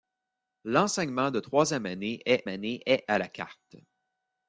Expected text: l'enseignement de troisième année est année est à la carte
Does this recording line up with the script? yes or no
yes